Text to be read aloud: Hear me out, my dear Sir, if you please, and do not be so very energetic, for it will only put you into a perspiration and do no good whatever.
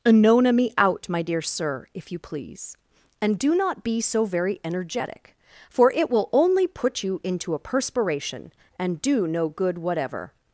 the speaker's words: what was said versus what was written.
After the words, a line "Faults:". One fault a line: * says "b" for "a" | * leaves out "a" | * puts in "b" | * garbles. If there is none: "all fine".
Anona me out, my dear Sir, if you please, and do not be so very energetic, for it will only put you into a perspiration and do no good whatever.
Faults:
* says "Anona" for "Hear"